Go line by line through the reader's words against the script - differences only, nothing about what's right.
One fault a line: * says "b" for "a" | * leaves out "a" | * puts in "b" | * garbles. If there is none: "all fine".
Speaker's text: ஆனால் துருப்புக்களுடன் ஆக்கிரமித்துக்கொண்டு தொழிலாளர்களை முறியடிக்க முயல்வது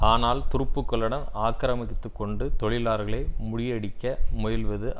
all fine